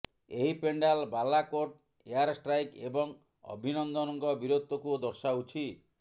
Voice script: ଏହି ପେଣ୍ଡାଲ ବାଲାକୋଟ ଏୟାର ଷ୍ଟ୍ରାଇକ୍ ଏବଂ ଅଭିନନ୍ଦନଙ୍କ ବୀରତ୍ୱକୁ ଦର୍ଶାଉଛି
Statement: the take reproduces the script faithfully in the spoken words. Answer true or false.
true